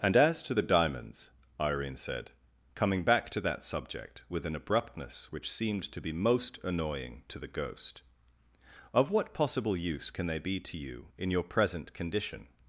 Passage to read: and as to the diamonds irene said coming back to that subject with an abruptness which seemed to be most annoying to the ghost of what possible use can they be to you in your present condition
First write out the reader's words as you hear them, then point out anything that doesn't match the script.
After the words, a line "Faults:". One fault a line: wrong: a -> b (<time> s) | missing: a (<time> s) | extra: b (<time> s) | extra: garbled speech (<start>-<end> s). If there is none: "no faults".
and as to the diamonds irene said coming back to that subject with an abruptness which seemed to be most annoying to the ghost of what possible use can they be to you in your present condition
Faults:
no faults